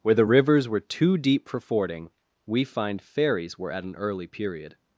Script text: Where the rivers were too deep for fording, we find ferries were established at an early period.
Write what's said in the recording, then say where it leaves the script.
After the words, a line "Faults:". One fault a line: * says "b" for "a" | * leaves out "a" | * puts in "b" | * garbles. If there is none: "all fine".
Where the rivers were too deep for fording, we find ferries were at an early period.
Faults:
* leaves out "established"